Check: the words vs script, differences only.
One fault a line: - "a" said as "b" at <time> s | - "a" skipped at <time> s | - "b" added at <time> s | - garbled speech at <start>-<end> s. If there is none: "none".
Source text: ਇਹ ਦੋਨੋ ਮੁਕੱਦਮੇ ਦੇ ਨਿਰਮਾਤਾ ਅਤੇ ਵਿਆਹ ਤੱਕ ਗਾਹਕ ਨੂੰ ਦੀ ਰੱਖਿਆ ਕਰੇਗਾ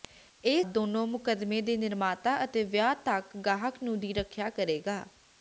none